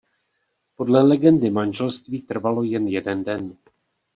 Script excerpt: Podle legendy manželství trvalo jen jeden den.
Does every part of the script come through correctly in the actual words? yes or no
yes